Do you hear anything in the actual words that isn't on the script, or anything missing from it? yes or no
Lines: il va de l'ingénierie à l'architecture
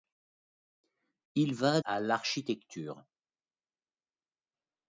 yes